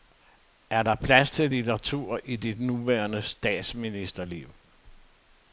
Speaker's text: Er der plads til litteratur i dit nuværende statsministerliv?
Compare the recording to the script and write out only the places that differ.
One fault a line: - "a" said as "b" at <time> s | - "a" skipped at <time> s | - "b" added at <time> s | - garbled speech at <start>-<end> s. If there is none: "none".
none